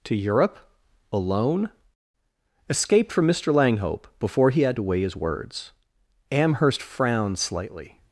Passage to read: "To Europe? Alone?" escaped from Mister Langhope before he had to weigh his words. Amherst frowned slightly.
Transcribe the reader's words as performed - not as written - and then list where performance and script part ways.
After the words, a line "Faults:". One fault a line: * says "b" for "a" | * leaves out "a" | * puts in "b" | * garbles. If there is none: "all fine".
"To Europe? Alone?" escaped from Mister Langhope before he had to weigh his words. Amherst frowned slightly.
Faults:
all fine